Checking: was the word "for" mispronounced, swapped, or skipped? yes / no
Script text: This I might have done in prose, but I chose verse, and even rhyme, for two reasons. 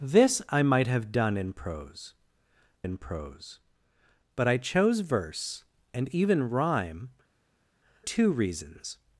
yes